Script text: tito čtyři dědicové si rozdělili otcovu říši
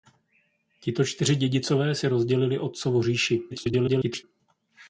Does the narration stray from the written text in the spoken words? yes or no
yes